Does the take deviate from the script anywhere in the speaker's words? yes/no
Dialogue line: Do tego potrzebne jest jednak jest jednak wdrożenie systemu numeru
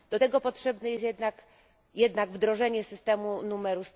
yes